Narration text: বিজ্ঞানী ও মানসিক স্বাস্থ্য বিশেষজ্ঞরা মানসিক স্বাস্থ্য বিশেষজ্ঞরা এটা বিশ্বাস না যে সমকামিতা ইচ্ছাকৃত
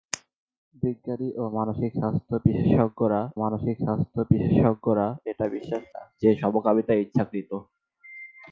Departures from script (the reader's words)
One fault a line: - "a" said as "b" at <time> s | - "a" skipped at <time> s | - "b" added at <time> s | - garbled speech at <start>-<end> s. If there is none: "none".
none